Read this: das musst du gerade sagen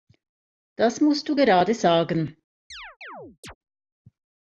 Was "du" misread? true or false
false